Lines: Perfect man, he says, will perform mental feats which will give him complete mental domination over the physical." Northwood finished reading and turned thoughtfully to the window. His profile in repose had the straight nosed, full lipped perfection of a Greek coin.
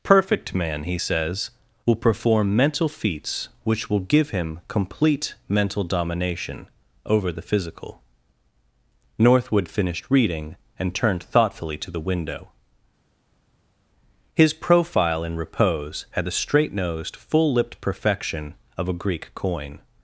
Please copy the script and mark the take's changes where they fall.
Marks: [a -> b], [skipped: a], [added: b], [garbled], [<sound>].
Perfect man, he says, will perform mental feats which will give him complete mental domination over the physical." Northwood finished reading and turned thoughtfully to the window. His profile in repose had the straight nosed, full lipped perfection of a Greek coin.